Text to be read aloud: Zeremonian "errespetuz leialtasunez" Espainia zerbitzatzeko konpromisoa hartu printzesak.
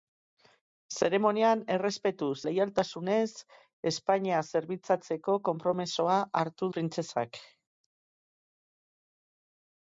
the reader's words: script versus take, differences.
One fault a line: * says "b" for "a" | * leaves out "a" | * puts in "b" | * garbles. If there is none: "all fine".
all fine